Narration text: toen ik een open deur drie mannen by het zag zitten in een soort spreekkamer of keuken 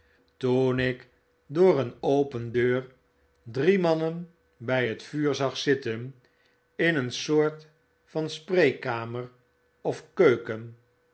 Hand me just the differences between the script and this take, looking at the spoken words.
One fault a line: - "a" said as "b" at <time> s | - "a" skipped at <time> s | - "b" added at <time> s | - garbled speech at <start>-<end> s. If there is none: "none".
- "door" added at 1.4 s
- "vuur" added at 5.0 s
- "van" added at 8.0 s